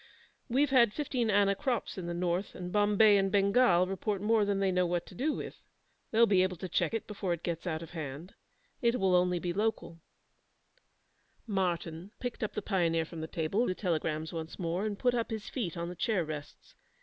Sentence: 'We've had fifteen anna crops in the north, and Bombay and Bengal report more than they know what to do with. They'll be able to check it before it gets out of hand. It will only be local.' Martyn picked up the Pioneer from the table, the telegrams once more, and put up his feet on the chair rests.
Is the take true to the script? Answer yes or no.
yes